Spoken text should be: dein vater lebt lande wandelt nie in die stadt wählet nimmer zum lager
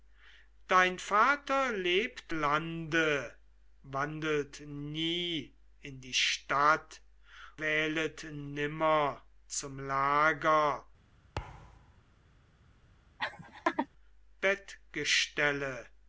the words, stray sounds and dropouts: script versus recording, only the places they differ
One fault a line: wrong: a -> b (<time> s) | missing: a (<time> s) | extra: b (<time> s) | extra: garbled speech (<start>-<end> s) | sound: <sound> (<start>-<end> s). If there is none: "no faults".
sound: thud (11.4-12.0 s)
sound: laugh (13.2-13.9 s)